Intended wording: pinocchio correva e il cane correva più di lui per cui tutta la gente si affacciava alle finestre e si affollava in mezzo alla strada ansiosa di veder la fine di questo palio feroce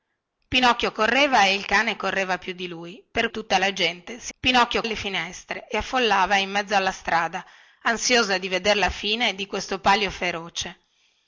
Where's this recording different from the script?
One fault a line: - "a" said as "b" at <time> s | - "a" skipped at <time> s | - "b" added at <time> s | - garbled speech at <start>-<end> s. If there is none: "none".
- "cui" skipped at 3.3 s
- "affacciava" said as "pinocchio" at 4.4 s
- "si" skipped at 5.8 s